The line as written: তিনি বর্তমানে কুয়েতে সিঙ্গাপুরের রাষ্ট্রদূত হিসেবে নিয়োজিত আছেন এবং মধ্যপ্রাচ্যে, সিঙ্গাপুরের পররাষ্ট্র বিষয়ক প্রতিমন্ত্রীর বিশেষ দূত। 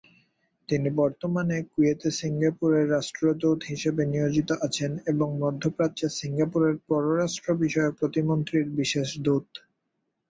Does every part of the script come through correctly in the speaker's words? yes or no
yes